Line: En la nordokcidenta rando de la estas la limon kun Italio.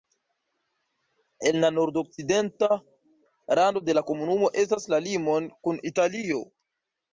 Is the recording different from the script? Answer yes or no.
yes